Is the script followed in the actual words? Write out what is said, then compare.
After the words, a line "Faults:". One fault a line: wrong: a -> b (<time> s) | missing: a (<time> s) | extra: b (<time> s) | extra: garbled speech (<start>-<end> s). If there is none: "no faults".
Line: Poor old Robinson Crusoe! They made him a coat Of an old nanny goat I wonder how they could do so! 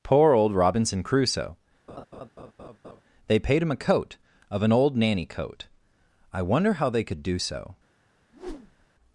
Poor old Robinson Crusoe! They paid him a coat Of an old nanny coat I wonder how they could do so!
Faults:
wrong: made -> paid (3.4 s)
wrong: goat -> coat (5.2 s)